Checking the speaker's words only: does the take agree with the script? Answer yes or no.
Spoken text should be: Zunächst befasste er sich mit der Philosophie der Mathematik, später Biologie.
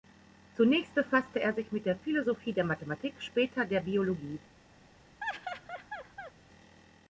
no